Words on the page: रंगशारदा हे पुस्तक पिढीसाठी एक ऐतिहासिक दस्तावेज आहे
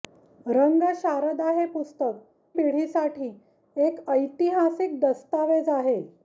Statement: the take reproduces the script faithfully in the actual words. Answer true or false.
true